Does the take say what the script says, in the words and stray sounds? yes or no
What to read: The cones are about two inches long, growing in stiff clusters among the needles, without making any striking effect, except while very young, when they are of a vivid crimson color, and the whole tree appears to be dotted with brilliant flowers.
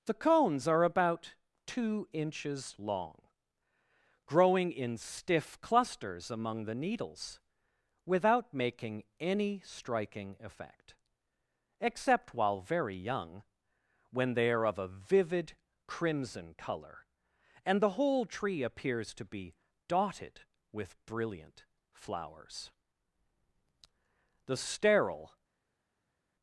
no